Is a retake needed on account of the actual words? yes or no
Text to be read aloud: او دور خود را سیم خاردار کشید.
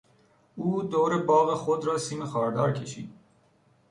yes